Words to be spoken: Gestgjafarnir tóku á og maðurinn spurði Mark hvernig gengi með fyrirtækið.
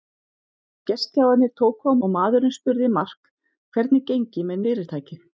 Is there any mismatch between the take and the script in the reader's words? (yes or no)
no